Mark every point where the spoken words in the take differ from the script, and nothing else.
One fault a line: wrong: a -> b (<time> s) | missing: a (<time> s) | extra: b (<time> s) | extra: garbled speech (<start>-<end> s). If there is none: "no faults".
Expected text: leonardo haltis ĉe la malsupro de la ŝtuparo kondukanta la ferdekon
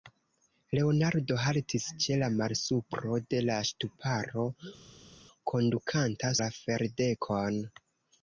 no faults